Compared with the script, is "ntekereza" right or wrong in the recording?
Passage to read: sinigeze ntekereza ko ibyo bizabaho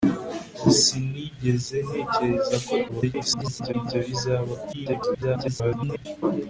right